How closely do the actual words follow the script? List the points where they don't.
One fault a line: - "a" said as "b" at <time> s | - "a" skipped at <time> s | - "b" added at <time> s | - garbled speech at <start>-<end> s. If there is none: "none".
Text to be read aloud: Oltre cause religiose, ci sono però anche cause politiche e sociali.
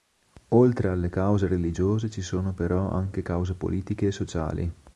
- "alle" added at 0.9 s